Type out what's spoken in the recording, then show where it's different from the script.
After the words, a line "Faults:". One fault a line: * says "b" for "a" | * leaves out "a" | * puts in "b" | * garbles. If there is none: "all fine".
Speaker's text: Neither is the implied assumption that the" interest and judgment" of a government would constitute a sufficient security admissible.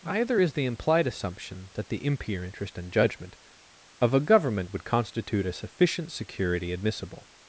Either is the implied assumption that the" impure interest and judgment" of a government would constitute a sufficient security admissible.
Faults:
* says "Either" for "Neither"
* puts in "impure"